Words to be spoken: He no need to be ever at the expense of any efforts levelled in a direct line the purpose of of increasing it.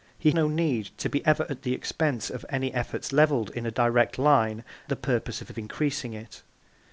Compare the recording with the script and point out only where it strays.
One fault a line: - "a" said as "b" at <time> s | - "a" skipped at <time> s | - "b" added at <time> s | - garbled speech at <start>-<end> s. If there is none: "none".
none